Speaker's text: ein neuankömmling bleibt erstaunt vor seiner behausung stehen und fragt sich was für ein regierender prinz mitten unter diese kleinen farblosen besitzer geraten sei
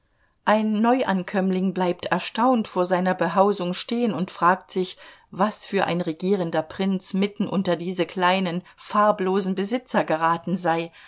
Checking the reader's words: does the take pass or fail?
pass